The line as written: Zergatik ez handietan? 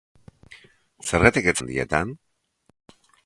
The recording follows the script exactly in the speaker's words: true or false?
true